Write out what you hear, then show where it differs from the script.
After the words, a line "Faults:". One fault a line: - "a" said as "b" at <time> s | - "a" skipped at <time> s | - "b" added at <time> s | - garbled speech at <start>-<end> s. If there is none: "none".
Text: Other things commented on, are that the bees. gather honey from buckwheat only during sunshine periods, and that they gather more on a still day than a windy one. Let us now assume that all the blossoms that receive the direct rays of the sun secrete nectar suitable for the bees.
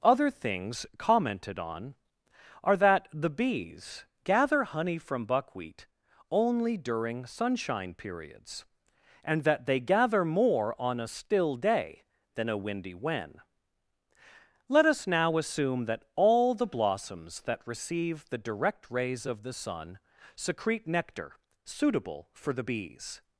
Other things commented on, are that the bees. gather honey from buckwheat only during sunshine periods, and that they gather more on a still day than a windy when. Let us now assume that all the blossoms that receive the direct rays of the sun secrete nectar suitable for the bees.
Faults:
- "one" said as "when" at 12.9 s